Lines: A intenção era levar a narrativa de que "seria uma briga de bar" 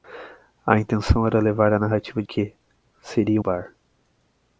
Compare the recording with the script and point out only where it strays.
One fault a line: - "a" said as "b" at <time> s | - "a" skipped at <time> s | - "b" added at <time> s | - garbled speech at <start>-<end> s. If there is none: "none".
- "de" skipped at 2.2 s
- "uma briga de" skipped at 3.4 s